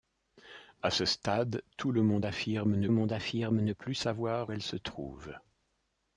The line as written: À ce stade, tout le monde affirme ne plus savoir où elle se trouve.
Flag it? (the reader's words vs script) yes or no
yes